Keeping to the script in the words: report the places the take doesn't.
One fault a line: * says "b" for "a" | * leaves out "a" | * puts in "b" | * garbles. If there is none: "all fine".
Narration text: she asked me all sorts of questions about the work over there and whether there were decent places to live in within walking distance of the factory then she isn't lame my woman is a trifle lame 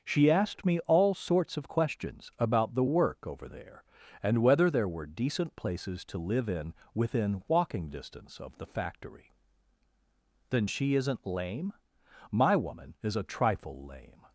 all fine